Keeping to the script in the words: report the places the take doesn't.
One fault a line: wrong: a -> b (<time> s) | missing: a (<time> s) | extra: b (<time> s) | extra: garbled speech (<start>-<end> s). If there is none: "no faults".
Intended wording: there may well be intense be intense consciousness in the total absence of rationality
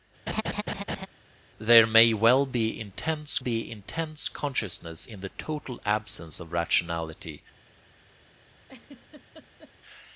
no faults